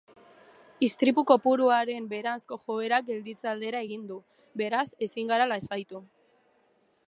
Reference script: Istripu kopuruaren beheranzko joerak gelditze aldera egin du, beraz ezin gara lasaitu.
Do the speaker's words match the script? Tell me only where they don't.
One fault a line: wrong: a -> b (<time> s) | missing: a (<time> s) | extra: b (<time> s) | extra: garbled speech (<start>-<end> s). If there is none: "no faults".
no faults